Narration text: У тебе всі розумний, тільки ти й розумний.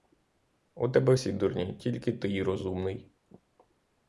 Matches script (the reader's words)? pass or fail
fail